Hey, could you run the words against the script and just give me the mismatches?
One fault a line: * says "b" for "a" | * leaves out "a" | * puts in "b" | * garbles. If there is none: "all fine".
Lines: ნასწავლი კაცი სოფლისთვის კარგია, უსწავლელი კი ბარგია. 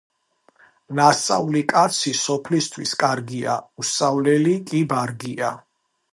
all fine